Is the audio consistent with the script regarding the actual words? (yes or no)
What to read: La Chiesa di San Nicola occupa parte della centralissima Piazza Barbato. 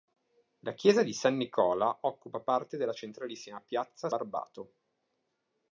yes